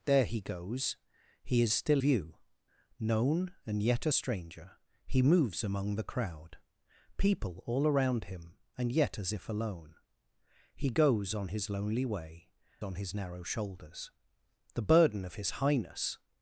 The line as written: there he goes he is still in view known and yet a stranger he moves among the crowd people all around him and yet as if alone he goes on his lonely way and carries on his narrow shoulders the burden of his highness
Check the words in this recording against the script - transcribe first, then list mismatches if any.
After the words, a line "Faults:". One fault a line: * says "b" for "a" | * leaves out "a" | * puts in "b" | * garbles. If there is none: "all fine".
there he goes he is still view known and yet a stranger he moves among the crowd people all around him and yet as if alone he goes on his lonely way on his narrow shoulders the burden of his highness
Faults:
* leaves out "in"
* leaves out "and carries"